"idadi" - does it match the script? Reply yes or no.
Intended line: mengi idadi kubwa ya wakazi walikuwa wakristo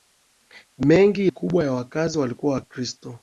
no